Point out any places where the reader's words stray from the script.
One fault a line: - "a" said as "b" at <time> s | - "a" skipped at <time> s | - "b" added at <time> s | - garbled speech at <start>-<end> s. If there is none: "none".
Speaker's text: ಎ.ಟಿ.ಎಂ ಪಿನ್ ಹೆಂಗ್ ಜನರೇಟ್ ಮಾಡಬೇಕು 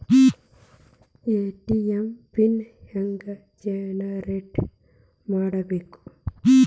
none